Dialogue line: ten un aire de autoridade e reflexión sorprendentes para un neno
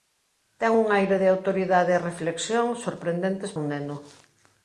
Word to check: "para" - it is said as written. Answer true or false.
false